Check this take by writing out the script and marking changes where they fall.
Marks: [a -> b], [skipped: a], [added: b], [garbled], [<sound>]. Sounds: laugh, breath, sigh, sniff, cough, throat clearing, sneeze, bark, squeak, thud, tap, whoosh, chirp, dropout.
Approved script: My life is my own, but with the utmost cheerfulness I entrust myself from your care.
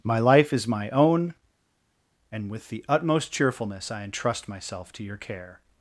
My life is my own, [but -> and] with the utmost cheerfulness I entrust myself [from -> to] your care.